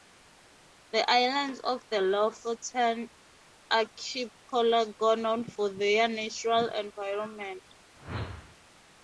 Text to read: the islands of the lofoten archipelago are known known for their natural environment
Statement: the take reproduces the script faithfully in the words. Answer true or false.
false